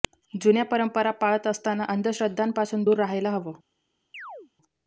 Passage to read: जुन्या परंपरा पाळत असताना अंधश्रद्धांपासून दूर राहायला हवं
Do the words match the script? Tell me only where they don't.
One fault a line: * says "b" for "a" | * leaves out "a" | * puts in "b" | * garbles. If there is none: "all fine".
all fine